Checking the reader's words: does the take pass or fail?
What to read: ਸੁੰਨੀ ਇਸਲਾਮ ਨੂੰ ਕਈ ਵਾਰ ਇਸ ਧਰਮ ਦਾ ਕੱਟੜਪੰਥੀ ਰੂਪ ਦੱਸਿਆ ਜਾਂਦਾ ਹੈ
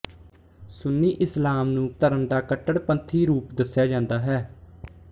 fail